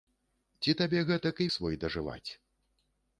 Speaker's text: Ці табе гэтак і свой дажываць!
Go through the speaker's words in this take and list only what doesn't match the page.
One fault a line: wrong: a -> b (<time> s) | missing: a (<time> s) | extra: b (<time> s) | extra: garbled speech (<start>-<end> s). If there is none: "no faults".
no faults